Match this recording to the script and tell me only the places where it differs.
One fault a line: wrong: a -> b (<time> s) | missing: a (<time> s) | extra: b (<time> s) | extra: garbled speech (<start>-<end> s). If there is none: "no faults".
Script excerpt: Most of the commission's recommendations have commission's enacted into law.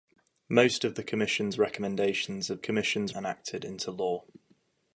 no faults